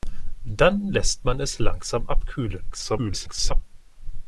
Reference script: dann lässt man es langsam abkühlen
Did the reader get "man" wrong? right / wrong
right